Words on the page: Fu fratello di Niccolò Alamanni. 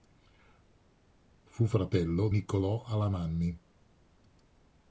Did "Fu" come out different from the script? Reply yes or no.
no